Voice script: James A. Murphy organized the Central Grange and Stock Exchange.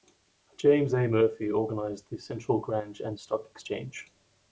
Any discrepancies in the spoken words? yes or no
no